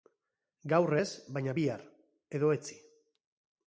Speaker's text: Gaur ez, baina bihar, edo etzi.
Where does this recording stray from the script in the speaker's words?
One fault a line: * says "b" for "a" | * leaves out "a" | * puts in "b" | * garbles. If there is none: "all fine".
all fine